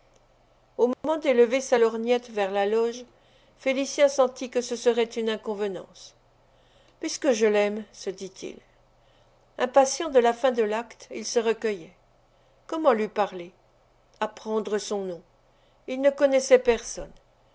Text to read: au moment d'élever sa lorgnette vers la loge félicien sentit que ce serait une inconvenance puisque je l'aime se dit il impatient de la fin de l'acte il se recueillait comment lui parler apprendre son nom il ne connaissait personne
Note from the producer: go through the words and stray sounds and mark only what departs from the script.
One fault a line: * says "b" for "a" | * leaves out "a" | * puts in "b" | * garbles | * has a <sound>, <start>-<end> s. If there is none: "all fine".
* has a dropout, 0.9-1.0 s